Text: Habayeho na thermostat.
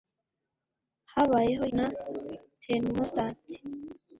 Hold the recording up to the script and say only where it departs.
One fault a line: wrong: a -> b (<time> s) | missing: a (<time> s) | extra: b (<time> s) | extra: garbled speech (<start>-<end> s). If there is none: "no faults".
no faults